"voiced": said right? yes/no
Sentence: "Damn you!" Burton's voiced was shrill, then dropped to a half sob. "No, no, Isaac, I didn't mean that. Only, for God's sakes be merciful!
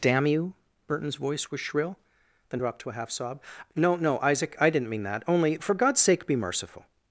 no